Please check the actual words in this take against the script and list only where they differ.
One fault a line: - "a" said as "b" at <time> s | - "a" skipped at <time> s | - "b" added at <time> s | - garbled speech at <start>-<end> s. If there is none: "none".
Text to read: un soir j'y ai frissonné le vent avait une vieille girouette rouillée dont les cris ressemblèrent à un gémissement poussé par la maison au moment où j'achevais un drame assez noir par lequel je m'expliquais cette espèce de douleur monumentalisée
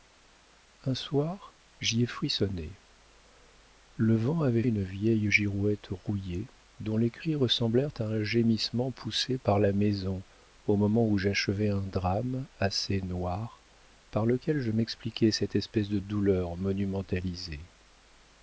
none